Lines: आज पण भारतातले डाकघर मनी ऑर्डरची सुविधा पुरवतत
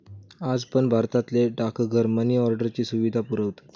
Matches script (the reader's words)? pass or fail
pass